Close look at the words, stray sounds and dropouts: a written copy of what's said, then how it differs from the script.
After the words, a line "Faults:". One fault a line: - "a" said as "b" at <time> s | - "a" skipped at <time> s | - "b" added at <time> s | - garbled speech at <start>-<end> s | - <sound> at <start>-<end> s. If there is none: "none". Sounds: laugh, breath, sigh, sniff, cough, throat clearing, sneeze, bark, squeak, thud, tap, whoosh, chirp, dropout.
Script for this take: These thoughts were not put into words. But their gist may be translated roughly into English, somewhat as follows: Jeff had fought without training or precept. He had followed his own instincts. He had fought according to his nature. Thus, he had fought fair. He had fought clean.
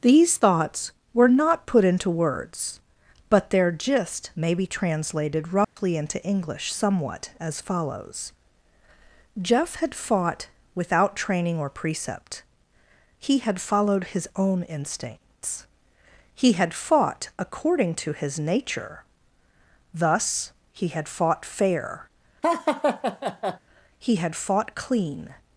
These thoughts were not put into words. But their gist may be translated roughly into English, somewhat as follows: Jeff had fought without training or precept. He had followed his own instincts. He had fought according to his nature. Thus, he had fought fair. He had fought clean.
Faults:
- dropout at 5.6-5.8 s
- laugh at 22.4-23.6 s